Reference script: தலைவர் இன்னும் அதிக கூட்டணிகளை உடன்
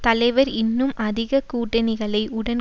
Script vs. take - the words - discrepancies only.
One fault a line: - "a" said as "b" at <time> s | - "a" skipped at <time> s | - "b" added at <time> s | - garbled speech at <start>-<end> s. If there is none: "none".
none